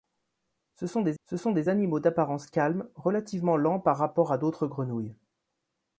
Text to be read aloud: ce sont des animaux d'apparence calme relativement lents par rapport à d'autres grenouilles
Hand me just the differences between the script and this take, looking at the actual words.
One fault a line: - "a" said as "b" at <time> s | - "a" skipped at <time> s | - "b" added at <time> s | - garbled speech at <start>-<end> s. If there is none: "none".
- "ce sont des" added at 1.2 s